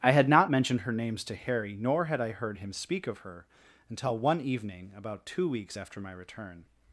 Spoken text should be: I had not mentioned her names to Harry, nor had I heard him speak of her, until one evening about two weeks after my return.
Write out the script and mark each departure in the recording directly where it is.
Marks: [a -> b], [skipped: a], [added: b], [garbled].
I had not mentioned her names to Harry, nor had I heard him speak of her, until one evening about two weeks after my return.